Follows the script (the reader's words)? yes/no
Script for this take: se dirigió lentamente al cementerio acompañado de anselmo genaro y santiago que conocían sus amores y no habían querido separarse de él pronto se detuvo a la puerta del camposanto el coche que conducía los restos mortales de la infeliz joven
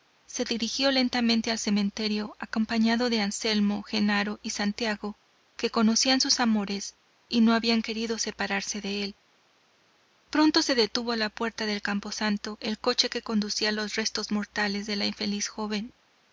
yes